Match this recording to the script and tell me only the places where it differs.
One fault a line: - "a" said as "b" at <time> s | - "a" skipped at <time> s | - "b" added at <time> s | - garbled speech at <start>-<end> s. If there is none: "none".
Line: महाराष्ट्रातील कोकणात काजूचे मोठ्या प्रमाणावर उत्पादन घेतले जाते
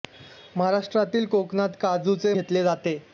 - "मोठ्या प्रमाणावर उत्पादन" skipped at 2.3 s